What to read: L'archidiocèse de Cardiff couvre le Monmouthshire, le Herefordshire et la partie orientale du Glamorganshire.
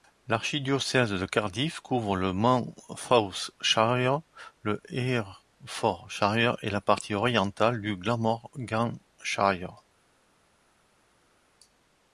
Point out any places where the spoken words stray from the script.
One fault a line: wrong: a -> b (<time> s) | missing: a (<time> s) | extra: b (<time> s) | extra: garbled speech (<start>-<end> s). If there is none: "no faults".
no faults